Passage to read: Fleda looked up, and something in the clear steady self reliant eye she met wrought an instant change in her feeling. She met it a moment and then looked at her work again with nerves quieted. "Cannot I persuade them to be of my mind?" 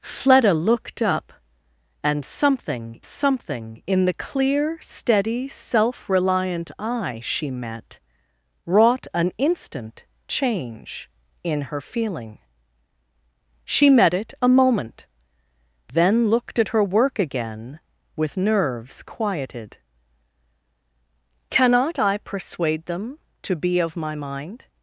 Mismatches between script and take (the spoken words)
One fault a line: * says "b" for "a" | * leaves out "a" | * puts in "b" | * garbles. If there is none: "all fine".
* puts in "something"
* leaves out "and"